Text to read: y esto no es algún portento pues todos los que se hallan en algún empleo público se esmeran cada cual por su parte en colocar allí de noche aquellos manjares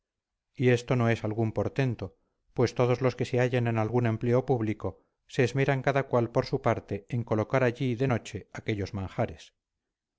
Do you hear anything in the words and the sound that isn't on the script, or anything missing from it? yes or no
no